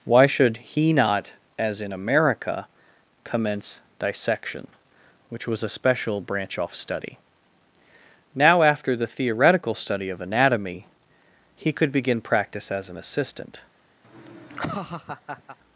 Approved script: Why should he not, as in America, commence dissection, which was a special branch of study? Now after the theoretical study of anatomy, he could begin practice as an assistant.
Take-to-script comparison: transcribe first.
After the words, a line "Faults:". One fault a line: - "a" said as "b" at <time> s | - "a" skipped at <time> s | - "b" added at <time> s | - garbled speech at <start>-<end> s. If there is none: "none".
Why should he not, as in America, commence dissection, which was a special branch off study? Now after the theoretical study of anatomy, he could begin practice as an assistant.
Faults:
- "of" said as "off" at 6.6 s